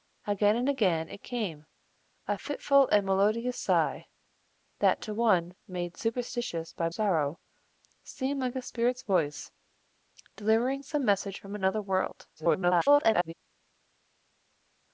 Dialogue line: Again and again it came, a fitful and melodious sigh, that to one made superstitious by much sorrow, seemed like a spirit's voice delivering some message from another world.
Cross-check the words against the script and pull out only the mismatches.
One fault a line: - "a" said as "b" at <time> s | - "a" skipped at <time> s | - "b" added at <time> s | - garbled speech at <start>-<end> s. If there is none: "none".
- "much" skipped at 6.9 s
- garbled speech at 12.4-13.3 s